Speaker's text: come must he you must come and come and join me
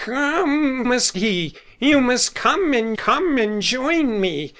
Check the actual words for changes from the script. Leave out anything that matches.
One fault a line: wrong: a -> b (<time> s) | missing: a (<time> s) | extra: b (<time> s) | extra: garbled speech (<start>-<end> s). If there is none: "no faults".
no faults